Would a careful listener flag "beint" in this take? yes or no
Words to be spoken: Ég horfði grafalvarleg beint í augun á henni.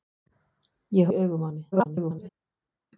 yes